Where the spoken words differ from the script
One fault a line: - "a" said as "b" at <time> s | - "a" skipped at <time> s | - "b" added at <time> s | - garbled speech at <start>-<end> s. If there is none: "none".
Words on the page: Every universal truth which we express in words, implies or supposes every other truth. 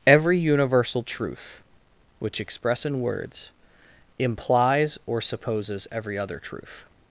- "we" skipped at 2.4 s